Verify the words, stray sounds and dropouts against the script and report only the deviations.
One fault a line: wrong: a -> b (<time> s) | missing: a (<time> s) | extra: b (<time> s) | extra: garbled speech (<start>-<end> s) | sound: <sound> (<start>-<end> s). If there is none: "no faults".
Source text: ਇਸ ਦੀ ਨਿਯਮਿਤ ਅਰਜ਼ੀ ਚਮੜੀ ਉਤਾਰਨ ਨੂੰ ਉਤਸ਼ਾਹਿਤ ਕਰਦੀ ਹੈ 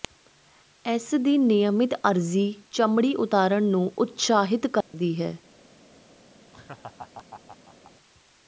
sound: dropout (4.8-4.9 s)
sound: laugh (6.5-7.9 s)